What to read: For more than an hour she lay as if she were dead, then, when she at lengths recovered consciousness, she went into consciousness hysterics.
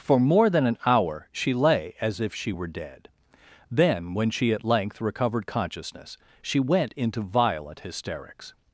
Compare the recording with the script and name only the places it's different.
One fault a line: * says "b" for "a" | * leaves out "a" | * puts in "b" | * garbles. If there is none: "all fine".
* says "length" for "lengths"
* says "violent" for "consciousness"